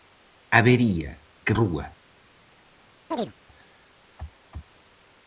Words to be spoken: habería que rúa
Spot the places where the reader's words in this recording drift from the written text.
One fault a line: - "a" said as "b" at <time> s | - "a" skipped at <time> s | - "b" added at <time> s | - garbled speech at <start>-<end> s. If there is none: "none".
none